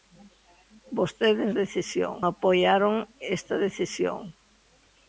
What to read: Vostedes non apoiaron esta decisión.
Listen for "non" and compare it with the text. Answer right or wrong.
wrong